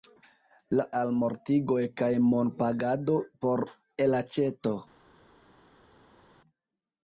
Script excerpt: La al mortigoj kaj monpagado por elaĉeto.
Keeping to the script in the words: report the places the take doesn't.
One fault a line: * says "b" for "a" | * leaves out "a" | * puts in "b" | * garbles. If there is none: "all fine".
all fine